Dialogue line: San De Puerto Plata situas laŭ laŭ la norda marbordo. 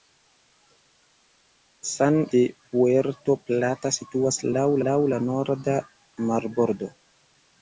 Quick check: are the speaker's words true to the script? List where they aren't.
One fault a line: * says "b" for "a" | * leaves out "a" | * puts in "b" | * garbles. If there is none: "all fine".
all fine